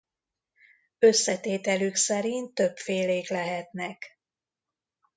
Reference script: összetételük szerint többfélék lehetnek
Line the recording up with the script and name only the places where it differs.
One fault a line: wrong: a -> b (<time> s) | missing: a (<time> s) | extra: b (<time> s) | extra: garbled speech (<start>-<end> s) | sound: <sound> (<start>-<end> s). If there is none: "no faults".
no faults